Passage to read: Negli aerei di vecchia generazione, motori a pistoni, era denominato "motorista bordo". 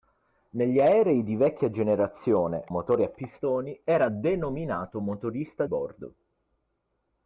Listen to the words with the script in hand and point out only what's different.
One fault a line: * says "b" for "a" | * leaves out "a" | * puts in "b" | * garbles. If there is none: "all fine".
all fine